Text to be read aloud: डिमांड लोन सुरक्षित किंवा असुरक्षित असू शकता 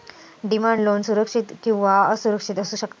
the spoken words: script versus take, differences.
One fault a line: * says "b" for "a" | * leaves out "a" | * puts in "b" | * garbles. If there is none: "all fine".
all fine